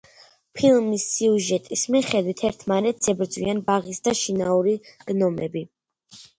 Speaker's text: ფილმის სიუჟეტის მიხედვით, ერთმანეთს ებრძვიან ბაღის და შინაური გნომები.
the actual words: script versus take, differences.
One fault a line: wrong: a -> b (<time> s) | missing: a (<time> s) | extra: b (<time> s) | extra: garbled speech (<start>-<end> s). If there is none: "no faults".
no faults